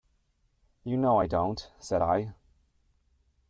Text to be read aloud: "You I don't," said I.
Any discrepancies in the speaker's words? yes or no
yes